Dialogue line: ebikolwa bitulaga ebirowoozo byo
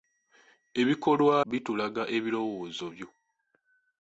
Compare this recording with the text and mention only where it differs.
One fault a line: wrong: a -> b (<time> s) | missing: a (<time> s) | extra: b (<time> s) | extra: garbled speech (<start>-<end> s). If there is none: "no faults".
no faults